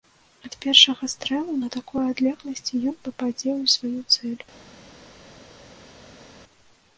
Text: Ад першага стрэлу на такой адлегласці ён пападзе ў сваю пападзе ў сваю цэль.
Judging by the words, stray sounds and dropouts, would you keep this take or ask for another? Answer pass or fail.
fail